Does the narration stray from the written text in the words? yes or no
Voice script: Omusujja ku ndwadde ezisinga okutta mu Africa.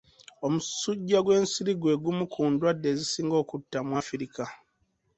yes